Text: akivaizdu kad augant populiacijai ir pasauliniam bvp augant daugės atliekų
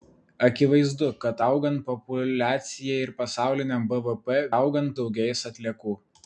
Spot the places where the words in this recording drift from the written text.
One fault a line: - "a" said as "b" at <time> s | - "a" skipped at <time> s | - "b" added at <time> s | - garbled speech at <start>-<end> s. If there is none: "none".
none